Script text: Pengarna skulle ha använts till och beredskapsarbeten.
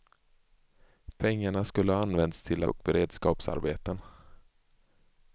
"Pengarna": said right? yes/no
yes